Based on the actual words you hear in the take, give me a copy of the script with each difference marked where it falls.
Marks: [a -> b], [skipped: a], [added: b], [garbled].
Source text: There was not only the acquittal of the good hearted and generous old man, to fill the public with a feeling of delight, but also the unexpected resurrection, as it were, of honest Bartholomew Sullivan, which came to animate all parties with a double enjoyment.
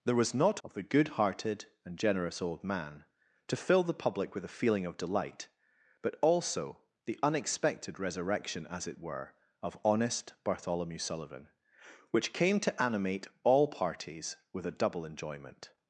There was not [skipped: only the acquittal] of the good hearted and generous old man, to fill the public with a feeling of delight, but also the unexpected resurrection, as it were, of honest Bartholomew Sullivan, which came to animate all parties with a double enjoyment.